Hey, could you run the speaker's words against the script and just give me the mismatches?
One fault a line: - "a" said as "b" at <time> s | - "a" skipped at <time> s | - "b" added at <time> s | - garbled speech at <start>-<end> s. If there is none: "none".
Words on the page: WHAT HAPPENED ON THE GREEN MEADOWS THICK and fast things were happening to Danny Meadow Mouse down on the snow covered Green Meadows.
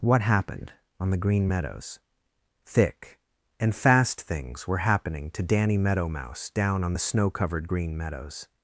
none